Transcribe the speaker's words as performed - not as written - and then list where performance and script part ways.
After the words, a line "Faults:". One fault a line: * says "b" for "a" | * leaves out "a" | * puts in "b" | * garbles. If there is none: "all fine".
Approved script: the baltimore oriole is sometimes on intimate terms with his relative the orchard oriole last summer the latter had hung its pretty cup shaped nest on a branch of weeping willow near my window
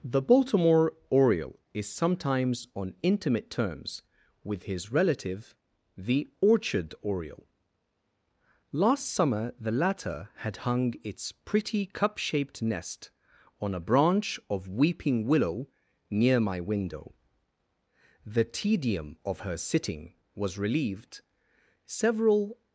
the baltimore oriole is sometimes on intimate terms with his relative the orchard oriole last summer the latter had hung its pretty cup shaped nest on a branch of weeping willow near my window the tedium of her sitting was relieved several
Faults:
* puts in "the tedium of her sitting was relieved several"